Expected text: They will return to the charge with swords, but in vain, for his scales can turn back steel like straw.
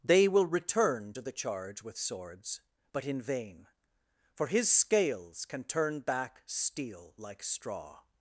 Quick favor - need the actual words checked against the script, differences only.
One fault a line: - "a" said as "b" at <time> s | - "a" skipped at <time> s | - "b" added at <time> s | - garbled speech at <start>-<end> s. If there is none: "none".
none